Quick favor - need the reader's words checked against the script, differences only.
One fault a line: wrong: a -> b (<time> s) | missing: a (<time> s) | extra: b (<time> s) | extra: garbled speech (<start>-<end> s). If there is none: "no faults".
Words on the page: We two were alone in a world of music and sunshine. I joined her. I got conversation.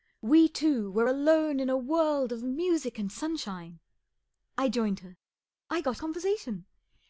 no faults